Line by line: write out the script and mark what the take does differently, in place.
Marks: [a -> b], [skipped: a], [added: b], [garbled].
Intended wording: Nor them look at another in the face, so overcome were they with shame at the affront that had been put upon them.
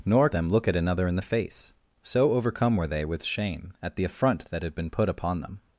Nor them look at another in the face, so overcome were they with shame at the affront that had been put upon them.